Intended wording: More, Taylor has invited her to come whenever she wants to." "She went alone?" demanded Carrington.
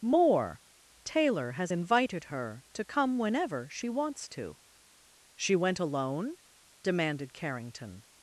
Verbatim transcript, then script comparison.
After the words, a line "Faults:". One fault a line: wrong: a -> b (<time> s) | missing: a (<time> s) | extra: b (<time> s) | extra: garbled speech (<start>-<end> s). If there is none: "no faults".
More, Taylor has invited her to come whenever she wants to." "She went alone?" demanded Carrington.
Faults:
no faults